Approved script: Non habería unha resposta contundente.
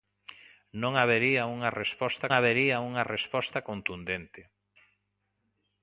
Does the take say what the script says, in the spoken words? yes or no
no